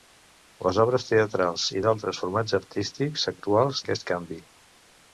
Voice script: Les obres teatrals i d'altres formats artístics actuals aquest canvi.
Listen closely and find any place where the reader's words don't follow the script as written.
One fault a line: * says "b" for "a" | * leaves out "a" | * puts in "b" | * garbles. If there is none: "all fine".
all fine